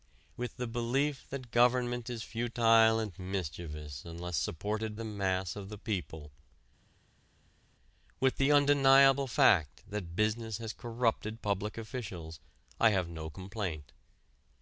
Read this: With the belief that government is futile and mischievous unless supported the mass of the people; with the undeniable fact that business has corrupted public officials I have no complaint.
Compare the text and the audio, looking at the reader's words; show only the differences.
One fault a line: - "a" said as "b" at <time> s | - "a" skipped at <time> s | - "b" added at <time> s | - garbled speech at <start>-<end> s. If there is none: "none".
none